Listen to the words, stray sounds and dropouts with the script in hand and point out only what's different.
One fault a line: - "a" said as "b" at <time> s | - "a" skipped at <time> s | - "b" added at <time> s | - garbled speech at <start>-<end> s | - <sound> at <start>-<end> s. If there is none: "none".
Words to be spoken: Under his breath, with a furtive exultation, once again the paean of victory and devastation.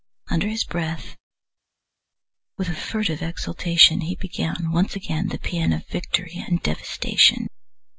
- "he began" added at 4.0 s